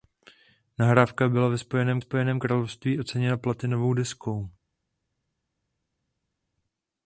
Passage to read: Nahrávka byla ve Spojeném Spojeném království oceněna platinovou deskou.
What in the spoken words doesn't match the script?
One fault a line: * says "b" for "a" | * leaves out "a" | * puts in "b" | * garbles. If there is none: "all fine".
all fine